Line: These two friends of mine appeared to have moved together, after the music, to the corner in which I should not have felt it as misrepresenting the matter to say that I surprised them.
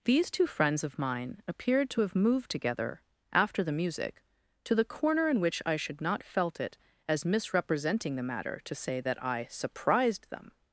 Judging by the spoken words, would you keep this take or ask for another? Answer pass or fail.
fail